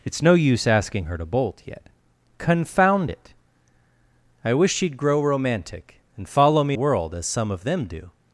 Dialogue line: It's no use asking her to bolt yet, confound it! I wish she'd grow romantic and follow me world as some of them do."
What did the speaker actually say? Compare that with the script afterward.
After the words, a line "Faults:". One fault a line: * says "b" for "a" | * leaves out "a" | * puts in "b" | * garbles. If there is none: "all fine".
It's no use asking her to bolt yet, confound it! I wish she'd grow romantic and follow me world as some of them do."
Faults:
all fine